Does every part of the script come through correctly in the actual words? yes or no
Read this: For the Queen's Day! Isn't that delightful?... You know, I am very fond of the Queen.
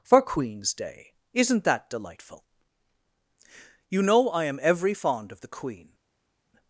no